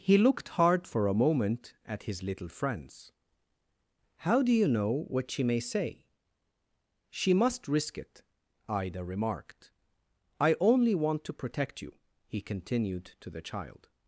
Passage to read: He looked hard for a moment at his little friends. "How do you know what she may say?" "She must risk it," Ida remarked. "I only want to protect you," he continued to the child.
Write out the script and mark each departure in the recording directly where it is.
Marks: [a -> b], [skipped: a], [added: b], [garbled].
He looked hard for a moment at his little friends. "How do you know what she may say?" "She must risk it," Ida remarked. "I only want to protect you," he continued to the child.